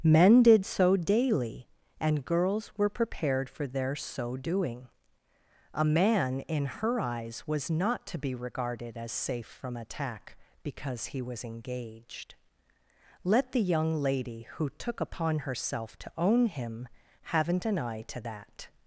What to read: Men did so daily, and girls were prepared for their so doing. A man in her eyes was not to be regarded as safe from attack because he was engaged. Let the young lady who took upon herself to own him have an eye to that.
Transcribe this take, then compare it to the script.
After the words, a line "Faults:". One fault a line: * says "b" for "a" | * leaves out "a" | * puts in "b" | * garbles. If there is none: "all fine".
Men did so daily, and girls were prepared for their so doing. A man in her eyes was not to be regarded as safe from attack because he was engaged. Let the young lady who took upon herself to own him haven't an eye to that.
Faults:
* says "haven't" for "have"